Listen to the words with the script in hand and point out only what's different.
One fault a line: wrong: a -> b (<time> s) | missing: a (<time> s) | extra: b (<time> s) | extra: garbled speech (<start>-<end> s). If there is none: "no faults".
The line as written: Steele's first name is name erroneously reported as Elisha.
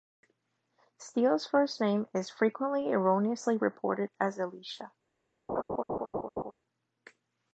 wrong: name -> frequently (2.3 s)